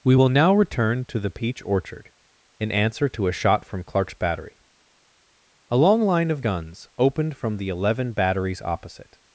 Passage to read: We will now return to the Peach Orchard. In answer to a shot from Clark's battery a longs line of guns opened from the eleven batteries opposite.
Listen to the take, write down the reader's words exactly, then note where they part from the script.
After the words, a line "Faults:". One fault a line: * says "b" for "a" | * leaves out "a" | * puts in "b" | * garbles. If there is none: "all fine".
We will now return to the Peach Orchard. In answer to a shot from Clark's battery a long line of guns opened from the eleven batteries opposite.
Faults:
* says "long" for "longs"